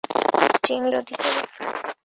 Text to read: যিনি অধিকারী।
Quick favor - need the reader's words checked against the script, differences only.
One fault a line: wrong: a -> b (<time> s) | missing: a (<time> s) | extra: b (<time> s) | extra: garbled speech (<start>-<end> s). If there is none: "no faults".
no faults